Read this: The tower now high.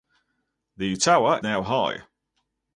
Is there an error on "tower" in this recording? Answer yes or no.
no